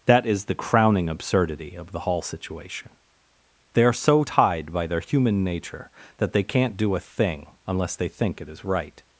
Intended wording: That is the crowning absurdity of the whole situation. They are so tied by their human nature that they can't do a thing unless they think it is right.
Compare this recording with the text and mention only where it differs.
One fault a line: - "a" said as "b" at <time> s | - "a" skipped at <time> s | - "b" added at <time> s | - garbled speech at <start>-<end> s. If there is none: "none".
- "whole" said as "hall" at 2.0 s